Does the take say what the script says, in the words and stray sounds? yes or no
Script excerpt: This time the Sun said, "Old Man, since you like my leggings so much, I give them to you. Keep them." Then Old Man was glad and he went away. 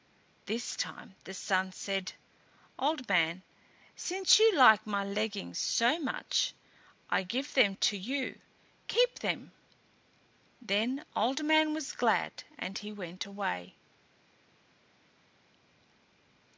yes